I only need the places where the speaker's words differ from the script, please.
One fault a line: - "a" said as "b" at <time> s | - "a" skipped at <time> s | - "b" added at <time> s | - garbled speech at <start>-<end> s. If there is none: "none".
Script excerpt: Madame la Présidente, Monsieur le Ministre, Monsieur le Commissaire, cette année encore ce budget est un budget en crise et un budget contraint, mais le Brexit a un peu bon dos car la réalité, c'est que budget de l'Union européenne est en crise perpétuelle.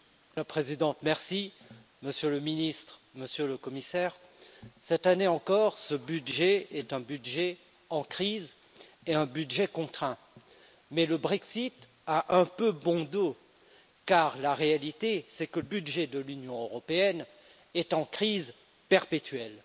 none